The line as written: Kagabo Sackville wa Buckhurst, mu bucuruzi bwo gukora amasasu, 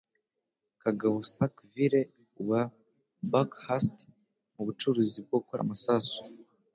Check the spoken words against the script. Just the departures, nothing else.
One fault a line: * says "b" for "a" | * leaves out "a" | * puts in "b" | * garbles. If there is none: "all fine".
all fine